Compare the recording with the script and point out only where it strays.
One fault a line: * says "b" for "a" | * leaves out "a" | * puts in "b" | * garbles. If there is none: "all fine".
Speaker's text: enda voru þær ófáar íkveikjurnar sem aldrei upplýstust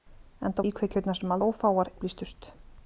* leaves out "voru þær ófáar"
* says "ófáar" for "aldrei"